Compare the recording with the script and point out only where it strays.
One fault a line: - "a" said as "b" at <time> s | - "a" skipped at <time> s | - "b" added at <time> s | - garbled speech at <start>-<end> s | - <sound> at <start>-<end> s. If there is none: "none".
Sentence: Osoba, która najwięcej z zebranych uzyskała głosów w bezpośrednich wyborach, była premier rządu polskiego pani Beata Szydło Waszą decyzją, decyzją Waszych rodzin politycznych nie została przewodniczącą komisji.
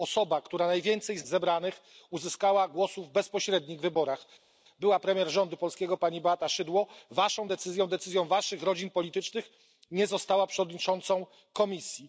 none